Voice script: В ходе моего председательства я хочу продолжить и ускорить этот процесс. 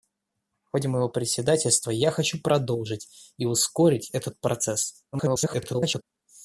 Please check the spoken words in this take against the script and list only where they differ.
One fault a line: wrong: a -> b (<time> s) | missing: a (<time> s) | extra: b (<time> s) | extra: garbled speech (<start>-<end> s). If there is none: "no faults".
extra: garbled speech (5.1-6.0 s)